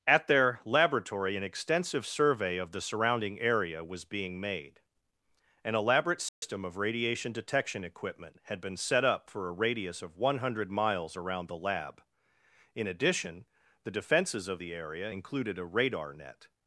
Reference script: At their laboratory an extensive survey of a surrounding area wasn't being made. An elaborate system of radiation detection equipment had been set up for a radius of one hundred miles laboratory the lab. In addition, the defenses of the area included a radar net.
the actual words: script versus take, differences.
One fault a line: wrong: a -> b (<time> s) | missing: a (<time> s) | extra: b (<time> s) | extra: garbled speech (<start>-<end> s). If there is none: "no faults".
wrong: a -> the (2.7 s)
wrong: wasn't -> was (3.8 s)
wrong: laboratory -> around (11.2 s)